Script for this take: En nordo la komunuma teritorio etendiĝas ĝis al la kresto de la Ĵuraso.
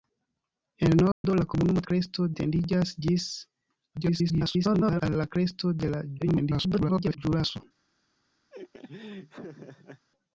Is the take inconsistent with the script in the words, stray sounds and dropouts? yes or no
yes